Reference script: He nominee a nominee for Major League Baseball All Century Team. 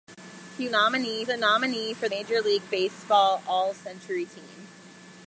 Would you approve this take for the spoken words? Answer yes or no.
yes